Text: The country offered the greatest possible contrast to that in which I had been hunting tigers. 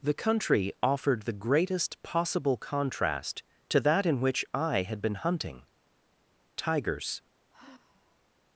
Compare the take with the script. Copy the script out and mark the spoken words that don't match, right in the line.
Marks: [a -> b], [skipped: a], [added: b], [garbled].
The country offered the greatest possible contrast to that in which I had been hunting tigers.